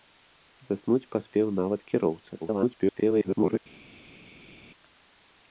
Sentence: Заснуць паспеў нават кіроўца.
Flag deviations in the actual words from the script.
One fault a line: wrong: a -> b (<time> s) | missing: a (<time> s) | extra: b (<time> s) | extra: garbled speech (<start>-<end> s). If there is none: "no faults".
extra: garbled speech (2.4-3.6 s)